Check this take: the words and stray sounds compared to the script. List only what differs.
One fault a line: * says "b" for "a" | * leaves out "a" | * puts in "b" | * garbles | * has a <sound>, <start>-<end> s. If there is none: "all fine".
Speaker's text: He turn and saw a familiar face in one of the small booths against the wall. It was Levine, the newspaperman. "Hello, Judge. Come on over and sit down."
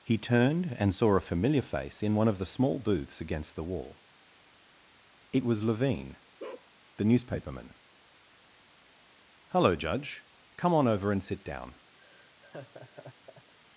* says "turned" for "turn"
* has a bark, 6.4-6.7 s
* has a laugh, 12.0-13.5 s